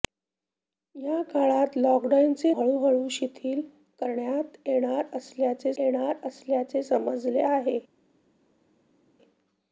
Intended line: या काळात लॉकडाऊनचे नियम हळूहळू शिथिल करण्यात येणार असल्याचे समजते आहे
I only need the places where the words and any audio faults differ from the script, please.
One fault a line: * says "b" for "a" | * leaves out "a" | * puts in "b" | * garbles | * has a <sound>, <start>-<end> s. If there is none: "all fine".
* leaves out "नियम"
* puts in "येणार असल्याचे"